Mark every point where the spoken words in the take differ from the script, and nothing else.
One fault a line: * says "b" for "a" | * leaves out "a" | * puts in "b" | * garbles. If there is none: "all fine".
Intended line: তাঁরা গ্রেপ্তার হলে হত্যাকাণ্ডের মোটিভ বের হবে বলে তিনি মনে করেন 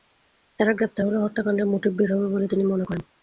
all fine